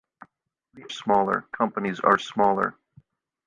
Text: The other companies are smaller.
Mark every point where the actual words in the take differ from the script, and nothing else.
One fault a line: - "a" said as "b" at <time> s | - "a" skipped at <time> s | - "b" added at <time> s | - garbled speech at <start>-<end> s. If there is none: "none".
- "other" said as "smaller" at 0.9 s